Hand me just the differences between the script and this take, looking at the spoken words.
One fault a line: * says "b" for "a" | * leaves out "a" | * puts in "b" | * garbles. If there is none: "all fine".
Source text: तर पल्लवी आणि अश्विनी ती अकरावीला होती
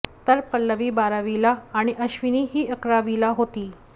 * puts in "बारावीला"
* says "ही" for "ती"